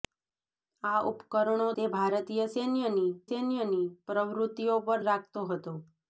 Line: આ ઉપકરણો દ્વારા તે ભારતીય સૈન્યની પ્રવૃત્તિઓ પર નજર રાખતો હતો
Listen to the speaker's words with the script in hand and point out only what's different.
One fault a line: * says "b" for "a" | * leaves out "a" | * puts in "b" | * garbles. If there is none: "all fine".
* leaves out "દ્વારા"
* puts in "સૈન્યની"
* leaves out "નજર"